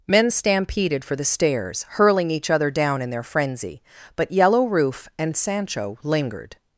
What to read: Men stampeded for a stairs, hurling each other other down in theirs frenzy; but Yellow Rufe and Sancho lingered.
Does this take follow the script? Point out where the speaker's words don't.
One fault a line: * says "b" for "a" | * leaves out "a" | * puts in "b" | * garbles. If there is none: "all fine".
* says "the" for "a"
* leaves out "other"
* says "their" for "theirs"